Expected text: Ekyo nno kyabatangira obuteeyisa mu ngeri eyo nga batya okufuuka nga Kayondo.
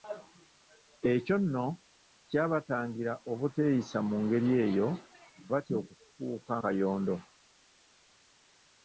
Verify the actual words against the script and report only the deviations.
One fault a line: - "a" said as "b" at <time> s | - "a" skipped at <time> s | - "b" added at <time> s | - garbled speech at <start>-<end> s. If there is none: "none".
- "nga" skipped at 4.9 s
- "nga" skipped at 6.5 s